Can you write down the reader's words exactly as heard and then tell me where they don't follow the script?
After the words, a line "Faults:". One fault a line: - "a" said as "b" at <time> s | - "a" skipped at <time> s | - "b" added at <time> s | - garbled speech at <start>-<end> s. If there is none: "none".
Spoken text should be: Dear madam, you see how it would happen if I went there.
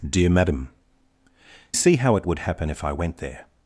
Dear madam, see how it would happen if I went there.
Faults:
- "you" skipped at 0.7 s